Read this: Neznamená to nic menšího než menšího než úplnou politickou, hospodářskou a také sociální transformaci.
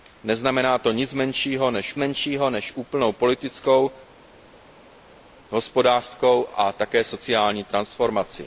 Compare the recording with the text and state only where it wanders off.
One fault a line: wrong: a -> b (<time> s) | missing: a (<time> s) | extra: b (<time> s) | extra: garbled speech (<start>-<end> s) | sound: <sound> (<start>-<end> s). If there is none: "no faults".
no faults